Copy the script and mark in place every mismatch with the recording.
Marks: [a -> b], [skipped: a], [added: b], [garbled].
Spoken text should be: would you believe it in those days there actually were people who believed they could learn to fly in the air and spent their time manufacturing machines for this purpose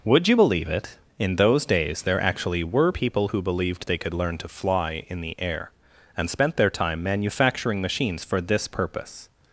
would you believe it in those days there actually were people who believed they could learn to fly in the air and spent their time manufacturing machines for this purpose